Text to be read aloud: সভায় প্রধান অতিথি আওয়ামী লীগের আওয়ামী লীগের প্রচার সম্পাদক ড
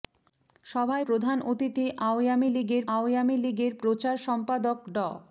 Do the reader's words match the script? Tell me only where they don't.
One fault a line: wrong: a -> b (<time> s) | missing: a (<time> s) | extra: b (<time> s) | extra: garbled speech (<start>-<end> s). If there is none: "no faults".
no faults